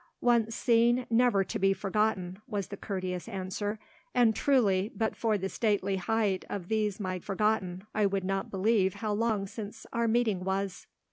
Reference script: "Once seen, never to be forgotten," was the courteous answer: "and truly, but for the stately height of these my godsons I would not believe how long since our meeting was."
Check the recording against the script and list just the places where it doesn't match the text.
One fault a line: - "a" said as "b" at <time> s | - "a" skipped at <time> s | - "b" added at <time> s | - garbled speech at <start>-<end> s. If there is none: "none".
- "godsons" said as "forgotten" at 7.2 s